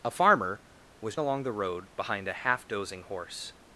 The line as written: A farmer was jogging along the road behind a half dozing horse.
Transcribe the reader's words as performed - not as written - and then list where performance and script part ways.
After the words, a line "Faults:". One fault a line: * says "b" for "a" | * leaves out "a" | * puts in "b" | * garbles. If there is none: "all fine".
A farmer was along the road behind a half dozing horse.
Faults:
* leaves out "jogging"